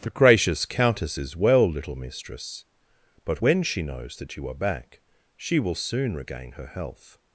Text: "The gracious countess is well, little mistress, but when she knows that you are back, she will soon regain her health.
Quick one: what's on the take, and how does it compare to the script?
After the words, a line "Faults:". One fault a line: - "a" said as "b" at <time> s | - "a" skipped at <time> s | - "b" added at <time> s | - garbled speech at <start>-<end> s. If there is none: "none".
"The gracious countess is well, little mistress, but when she knows that you are back, she will soon regain her health.
Faults:
none